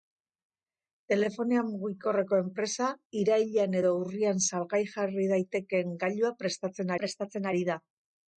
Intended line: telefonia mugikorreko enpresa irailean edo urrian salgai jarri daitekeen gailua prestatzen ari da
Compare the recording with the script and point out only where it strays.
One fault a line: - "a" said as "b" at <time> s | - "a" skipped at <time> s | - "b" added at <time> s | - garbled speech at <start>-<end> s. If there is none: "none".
- "prestatzen" added at 7.0 s